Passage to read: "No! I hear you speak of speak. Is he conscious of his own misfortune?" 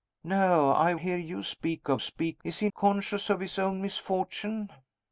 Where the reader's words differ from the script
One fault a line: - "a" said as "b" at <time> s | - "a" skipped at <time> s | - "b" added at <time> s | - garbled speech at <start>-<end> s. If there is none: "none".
none